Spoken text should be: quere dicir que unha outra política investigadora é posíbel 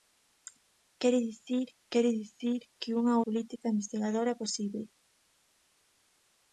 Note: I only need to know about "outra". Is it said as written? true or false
false